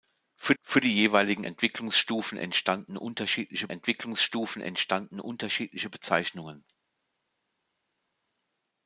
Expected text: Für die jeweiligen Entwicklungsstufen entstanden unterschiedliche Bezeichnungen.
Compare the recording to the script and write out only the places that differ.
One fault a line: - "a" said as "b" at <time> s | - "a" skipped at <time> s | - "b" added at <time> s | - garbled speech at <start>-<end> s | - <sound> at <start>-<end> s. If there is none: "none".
- "für" added at 0.6 s
- "Entwicklungsstufen entstanden unterschiedliche" added at 3.7 s